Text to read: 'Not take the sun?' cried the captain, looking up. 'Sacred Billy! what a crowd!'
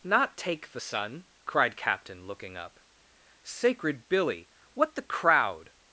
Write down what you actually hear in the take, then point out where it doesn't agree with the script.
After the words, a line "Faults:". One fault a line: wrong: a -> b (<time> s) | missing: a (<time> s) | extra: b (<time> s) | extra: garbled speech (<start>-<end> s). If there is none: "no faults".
'Not take the sun?' cried captain, looking up. 'Sacred Billy! what the crowd!'
Faults:
missing: the (1.7 s)
wrong: a -> the (4.9 s)